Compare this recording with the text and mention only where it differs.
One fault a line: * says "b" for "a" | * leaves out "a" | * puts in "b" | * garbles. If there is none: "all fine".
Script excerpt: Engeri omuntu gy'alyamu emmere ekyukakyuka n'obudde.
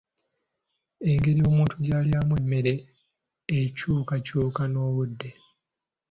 all fine